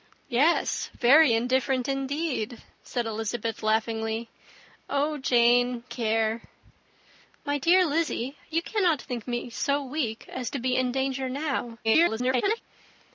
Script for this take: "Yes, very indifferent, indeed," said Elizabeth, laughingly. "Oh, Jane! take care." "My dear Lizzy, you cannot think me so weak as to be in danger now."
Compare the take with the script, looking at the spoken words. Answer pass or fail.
fail